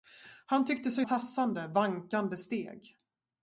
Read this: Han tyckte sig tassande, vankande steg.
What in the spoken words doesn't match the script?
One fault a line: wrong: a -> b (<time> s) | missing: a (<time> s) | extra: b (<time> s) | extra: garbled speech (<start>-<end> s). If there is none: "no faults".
no faults